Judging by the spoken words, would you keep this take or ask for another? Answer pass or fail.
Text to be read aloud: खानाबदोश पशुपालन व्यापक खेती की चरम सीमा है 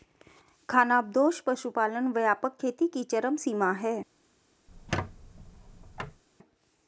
pass